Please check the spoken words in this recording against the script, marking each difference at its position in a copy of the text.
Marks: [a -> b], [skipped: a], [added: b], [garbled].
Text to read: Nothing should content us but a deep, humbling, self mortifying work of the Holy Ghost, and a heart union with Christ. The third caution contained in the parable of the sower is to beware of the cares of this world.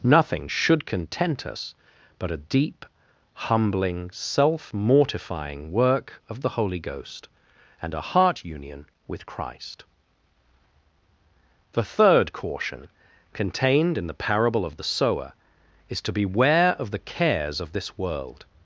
Nothing should content us but a deep, humbling, self mortifying work of the Holy Ghost, and a heart union with Christ. The third caution contained in the parable of the sower is to beware of the cares of this world.